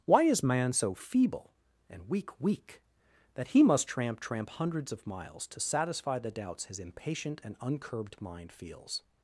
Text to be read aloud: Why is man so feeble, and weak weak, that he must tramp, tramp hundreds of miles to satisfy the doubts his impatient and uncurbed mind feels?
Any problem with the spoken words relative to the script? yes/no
no